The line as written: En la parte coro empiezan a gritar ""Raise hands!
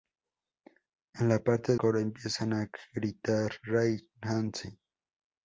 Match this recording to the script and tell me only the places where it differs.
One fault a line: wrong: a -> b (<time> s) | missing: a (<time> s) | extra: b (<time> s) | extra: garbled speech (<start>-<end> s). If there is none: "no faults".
no faults